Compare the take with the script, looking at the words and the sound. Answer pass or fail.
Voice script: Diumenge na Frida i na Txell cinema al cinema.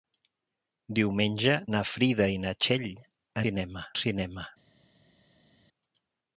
pass